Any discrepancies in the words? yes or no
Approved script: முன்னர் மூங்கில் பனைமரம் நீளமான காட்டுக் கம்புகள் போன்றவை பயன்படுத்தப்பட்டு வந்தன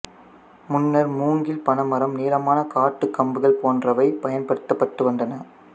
no